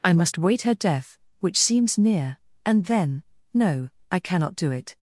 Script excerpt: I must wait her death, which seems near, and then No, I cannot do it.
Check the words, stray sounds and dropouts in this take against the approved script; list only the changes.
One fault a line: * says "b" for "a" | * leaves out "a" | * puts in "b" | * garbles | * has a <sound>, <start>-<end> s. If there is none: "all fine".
all fine